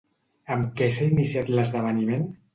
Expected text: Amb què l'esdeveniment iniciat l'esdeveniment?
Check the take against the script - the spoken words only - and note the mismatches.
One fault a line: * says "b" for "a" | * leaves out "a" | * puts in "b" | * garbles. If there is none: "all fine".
* says "s'ha" for "l'esdeveniment"